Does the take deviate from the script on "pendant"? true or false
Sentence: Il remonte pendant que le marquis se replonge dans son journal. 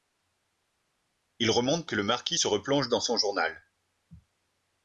true